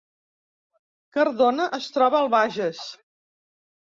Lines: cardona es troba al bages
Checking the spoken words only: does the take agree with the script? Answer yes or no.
yes